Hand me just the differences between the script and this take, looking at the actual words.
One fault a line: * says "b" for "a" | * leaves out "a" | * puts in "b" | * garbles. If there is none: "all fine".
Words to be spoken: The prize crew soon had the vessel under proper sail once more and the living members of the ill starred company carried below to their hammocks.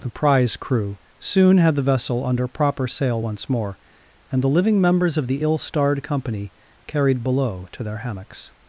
all fine